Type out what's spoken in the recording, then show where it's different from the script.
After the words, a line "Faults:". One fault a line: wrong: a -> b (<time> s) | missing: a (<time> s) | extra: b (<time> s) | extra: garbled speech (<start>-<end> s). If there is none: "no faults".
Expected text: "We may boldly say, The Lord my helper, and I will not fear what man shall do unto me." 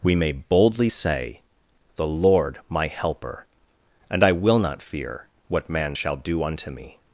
"We may boldly say, The Lord my helper, and I will not fear what man shall do unto me."
Faults:
no faults